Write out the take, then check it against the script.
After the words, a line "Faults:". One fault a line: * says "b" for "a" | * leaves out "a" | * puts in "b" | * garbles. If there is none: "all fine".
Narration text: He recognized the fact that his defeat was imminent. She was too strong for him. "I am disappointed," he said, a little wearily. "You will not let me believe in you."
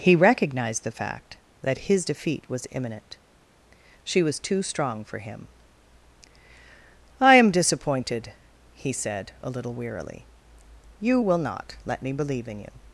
He recognized the fact that his defeat was imminent. She was too strong for him. "I am disappointed," he said, a little wearily. "You will not let me believe in you."
Faults:
all fine